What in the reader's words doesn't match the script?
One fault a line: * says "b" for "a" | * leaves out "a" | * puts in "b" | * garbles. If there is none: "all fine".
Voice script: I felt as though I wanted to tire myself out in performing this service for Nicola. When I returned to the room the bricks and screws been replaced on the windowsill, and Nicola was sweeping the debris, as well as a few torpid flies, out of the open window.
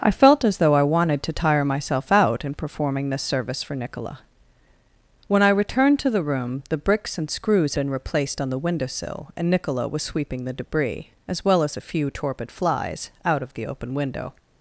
all fine